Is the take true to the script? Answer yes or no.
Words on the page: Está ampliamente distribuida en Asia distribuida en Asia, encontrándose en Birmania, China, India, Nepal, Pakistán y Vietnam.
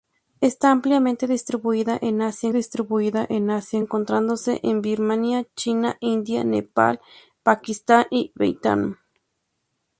yes